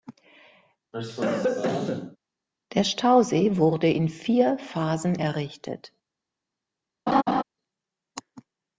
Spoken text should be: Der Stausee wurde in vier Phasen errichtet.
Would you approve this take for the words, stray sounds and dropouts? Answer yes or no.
no